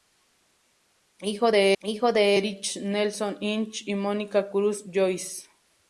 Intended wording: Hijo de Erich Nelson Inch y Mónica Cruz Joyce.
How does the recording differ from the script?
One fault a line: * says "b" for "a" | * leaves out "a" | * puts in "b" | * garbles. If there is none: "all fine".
* puts in "hijo de"